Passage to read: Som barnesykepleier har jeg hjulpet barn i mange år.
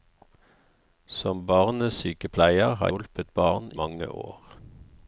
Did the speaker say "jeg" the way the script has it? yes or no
no